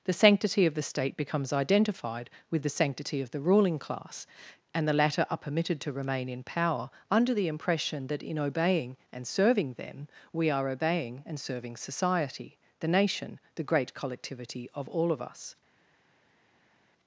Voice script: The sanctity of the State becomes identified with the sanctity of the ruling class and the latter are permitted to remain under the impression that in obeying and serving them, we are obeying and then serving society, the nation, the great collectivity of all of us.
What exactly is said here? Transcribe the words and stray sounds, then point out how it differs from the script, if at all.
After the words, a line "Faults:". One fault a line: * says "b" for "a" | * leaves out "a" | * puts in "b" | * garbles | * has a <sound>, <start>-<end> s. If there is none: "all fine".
The sanctity of the State becomes identified with the sanctity of the ruling class and the latter are permitted to remain in power under the impression that in obeying and serving them, we are obeying and serving society, the nation, the great collectivity of all of us.
Faults:
* puts in "in power"
* leaves out "then"